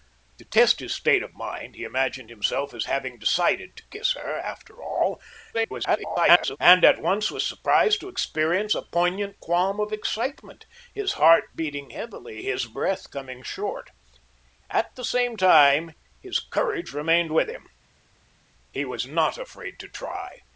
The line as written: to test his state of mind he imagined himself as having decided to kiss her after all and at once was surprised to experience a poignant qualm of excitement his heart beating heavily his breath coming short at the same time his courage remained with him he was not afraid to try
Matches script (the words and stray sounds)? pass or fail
fail